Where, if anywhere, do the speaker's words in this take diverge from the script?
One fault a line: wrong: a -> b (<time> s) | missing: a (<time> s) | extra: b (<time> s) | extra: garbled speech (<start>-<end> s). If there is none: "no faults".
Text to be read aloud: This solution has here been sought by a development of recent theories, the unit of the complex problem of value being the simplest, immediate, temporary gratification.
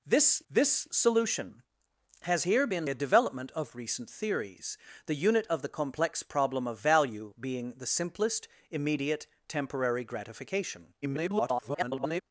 extra: this (0.5 s)
missing: sought by (2.9 s)
extra: garbled speech (11.0-12.2 s)